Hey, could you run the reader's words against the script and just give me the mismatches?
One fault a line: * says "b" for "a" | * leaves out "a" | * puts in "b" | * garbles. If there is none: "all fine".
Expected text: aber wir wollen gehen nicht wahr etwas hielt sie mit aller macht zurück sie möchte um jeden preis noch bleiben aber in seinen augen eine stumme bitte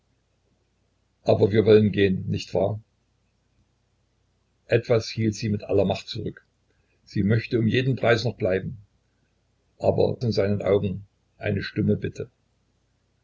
all fine